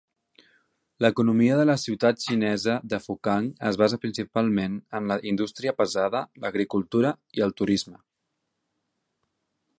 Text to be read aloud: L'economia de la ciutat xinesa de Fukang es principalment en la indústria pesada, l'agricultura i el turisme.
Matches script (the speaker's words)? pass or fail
fail